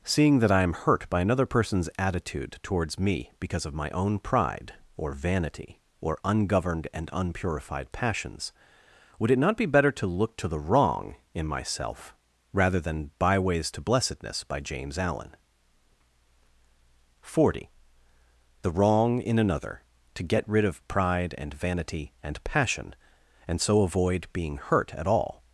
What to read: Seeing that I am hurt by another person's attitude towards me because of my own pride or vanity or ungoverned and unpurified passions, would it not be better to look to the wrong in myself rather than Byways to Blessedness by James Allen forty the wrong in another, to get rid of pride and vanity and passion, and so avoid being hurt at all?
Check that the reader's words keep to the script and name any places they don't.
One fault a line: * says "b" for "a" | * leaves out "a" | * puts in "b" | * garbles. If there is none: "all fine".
all fine